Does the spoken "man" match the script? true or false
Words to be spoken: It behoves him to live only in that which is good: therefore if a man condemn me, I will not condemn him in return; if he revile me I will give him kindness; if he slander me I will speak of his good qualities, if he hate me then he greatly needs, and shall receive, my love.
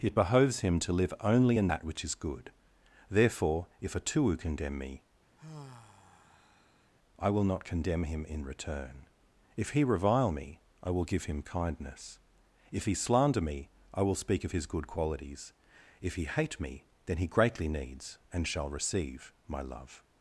false